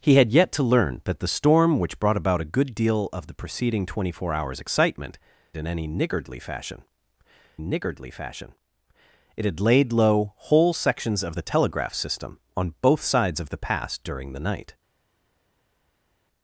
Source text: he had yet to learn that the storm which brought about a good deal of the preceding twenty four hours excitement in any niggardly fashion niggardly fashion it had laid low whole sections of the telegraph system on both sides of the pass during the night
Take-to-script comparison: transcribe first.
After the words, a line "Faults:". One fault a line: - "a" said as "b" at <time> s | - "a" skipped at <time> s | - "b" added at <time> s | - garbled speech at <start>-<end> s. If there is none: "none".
he had yet to learn that the storm which brought about a good deal of the preceding twenty four hours excitement in any niggardly fashion niggardly fashion it had laid low whole sections of the telegraph system on both sides of the pass during the night
Faults:
none